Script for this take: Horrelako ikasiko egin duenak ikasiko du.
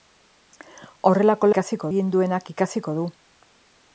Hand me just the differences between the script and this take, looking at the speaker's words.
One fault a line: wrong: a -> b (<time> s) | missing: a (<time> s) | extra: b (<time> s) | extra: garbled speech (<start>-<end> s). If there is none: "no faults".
no faults